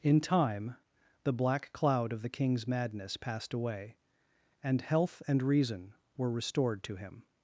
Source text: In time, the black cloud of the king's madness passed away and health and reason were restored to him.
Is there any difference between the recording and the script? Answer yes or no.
no